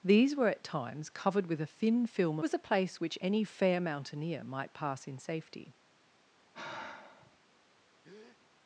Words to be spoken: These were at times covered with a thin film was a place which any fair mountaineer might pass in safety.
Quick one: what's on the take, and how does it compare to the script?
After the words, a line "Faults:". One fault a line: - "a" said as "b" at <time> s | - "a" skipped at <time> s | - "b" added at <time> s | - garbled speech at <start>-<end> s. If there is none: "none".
These were at times covered with a thin film was a place which any fair mountaineer might pass in safety.
Faults:
none